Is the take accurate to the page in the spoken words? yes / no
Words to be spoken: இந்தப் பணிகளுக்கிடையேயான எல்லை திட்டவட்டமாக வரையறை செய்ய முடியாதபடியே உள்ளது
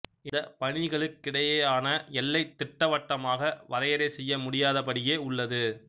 yes